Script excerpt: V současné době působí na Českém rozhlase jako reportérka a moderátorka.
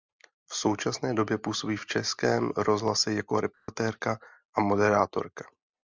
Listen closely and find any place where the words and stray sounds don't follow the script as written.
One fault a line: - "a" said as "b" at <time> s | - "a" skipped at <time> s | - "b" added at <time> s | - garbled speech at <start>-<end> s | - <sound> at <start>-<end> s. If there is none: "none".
- "na" said as "v" at 1.7 s
- dropout at 3.5-3.7 s